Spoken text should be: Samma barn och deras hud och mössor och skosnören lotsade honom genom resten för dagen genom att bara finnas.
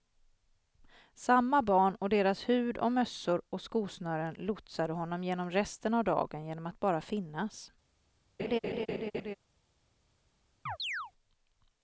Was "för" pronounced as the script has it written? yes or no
no